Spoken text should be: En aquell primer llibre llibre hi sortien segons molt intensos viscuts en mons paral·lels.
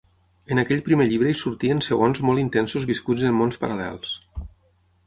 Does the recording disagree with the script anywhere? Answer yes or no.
yes